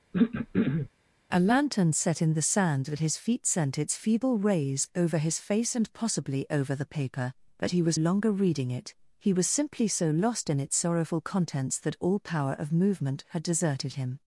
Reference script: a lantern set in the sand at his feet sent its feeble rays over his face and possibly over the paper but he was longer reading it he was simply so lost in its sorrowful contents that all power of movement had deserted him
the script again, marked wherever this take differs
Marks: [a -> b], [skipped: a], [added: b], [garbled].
a lantern set in the sand at his feet sent its feeble rays over his face and possibly over the paper but he was longer reading it he was simply so lost in its sorrowful contents that all power of movement had deserted him